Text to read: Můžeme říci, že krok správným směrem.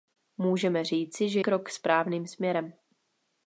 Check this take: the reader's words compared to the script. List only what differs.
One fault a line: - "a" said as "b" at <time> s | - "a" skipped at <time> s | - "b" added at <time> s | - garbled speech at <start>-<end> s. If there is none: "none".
none